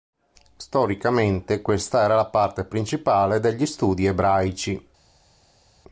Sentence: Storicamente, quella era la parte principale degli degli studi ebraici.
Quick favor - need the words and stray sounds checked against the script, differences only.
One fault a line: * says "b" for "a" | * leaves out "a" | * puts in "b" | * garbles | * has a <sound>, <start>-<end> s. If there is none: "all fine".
* says "questa" for "quella"
* leaves out "degli"